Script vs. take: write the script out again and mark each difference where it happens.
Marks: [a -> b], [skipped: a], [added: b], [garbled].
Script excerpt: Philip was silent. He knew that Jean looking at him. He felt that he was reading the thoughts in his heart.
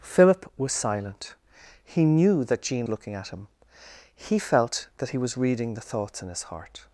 Philip was silent. He knew that Jean looking at him. He felt that he was reading the thoughts in his heart.